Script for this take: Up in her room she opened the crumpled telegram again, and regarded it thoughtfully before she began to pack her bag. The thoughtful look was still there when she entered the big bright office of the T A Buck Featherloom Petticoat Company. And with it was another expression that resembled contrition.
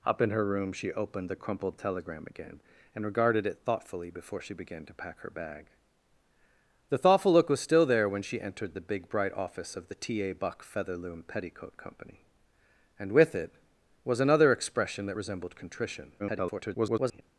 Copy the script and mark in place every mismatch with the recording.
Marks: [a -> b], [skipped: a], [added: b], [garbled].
Up in her room she opened the crumpled telegram again, and regarded it thoughtfully before she began to pack her bag. The thoughtful look was still there when she entered the big bright office of the T A Buck Featherloom Petticoat Company. And with it was another expression that resembled contrition. [garbled]